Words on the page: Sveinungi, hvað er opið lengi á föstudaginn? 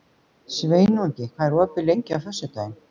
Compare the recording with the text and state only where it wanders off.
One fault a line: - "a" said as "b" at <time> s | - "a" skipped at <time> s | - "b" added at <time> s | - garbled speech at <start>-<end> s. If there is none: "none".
none